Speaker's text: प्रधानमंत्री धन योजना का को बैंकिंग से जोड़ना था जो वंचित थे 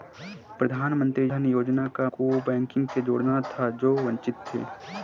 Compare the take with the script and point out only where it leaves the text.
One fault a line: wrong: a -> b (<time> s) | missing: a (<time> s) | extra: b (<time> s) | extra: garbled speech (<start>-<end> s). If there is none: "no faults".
no faults